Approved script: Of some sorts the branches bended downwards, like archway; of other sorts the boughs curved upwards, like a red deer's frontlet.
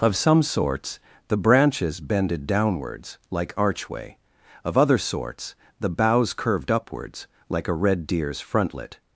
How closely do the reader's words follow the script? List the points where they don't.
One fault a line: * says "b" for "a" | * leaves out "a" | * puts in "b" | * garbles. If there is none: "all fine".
all fine